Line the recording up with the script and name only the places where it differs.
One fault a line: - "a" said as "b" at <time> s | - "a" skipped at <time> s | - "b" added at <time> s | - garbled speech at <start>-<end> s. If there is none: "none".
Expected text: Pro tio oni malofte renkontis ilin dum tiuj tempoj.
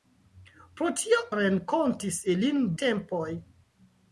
- "oni malofte" skipped at 1.2 s
- "dum tiuj" skipped at 2.6 s